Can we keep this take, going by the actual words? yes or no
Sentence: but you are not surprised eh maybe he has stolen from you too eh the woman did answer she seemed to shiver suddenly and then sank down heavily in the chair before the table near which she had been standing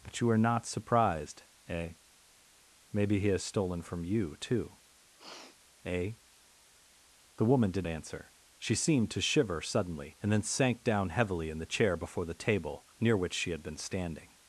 yes